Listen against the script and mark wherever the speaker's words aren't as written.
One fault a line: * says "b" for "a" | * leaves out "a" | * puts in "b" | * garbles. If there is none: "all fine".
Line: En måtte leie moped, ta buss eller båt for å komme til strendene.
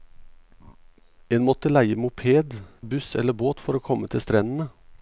* leaves out "ta"